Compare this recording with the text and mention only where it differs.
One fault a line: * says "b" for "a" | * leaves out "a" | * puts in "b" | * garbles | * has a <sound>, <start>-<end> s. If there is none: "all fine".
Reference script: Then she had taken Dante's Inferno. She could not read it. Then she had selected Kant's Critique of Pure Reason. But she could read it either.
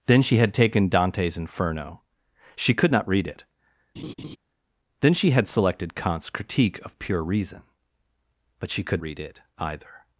* has a laugh, 4.0-4.4 s